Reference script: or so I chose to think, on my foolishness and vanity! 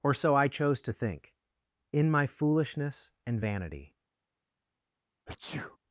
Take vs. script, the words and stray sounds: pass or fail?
fail